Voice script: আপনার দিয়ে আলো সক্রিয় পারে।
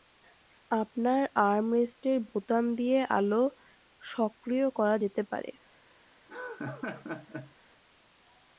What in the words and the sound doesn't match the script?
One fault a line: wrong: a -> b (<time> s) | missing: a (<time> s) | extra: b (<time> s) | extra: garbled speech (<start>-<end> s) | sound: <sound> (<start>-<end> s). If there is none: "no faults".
extra: আর্মরেস্টের বোতাম (1.4 s)
extra: করা যেতে (4.7 s)
sound: laugh (6.3-7.5 s)